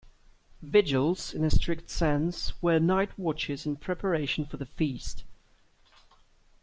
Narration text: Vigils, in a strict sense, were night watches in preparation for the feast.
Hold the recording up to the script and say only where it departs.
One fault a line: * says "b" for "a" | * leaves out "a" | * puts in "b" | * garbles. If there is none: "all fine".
all fine